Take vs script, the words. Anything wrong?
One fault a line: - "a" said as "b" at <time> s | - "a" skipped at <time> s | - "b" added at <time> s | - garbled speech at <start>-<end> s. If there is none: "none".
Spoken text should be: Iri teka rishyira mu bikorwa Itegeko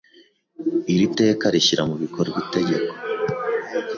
none